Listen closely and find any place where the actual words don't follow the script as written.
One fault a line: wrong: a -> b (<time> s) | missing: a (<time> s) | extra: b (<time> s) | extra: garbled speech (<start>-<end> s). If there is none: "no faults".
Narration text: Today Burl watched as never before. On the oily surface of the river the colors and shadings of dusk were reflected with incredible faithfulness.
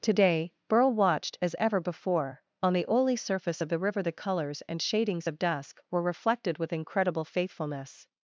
wrong: never -> ever (1.6 s)